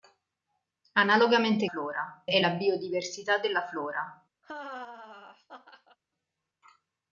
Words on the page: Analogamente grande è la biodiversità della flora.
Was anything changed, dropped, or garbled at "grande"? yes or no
yes